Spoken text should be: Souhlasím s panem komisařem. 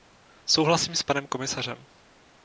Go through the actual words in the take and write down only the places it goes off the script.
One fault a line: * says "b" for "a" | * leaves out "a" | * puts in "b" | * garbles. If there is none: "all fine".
all fine